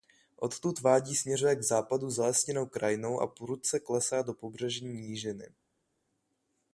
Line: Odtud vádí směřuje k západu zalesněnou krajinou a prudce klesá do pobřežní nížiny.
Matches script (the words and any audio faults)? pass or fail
pass